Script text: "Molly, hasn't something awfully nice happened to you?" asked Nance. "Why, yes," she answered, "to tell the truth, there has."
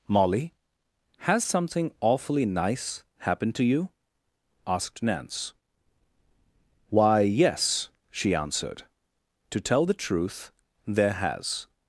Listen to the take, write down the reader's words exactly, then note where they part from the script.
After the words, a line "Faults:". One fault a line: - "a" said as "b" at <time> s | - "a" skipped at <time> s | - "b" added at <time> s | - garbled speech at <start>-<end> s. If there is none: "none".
"Molly, has something awfully nice happened to you?" asked Nance. "Why, yes," she answered, "to tell the truth, there has."
Faults:
- "hasn't" said as "has" at 1.2 s